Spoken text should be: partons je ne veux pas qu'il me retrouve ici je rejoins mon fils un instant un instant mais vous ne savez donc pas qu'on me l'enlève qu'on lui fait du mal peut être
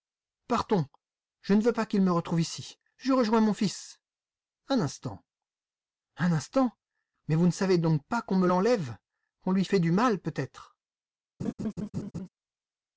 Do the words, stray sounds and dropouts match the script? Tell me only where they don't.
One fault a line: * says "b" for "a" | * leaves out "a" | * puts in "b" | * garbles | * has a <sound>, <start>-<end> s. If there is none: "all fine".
* has a laugh, 11.4-12.3 s